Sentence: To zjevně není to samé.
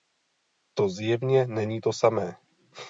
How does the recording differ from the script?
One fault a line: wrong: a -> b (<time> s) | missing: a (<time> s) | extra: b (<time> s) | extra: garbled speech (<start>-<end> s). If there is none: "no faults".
no faults